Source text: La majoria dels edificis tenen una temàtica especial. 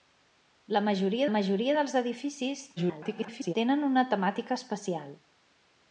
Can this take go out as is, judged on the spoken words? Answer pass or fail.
fail